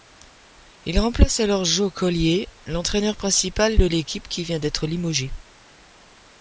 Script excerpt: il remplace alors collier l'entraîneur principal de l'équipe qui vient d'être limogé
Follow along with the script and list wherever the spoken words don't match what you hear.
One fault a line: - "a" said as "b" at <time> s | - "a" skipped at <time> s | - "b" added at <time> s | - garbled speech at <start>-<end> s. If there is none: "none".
- "joe" added at 1.6 s